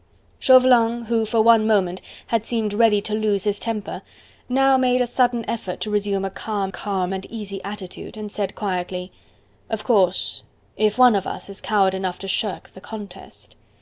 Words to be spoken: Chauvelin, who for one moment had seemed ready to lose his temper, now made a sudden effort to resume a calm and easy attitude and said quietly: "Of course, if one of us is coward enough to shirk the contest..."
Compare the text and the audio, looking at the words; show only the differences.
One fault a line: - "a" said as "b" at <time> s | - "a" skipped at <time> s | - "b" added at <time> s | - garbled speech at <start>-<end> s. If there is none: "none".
- "calm" added at 6.7 s